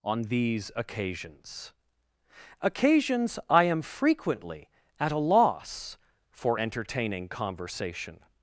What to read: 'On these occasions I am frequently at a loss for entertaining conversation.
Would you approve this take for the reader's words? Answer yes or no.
no